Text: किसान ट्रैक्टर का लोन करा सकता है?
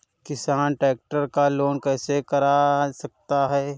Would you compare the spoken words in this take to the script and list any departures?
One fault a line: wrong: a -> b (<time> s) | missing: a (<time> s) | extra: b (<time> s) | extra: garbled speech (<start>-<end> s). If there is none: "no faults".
extra: कैसे (1.8 s)